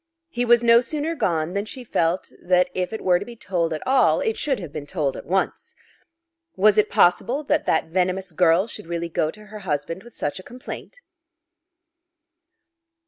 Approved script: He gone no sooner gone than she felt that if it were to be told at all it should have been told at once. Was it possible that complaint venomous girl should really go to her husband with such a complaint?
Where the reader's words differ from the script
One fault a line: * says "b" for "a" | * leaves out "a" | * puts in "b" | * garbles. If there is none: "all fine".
* says "was" for "gone"
* says "that" for "complaint"